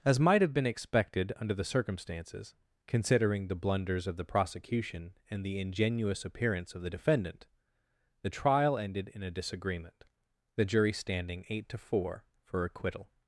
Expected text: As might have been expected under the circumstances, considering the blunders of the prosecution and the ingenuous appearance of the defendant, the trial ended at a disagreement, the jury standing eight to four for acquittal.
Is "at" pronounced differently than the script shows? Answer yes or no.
yes